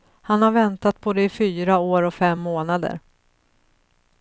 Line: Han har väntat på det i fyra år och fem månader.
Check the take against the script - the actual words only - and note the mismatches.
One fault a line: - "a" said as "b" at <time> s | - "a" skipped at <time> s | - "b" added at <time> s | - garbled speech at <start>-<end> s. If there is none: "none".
none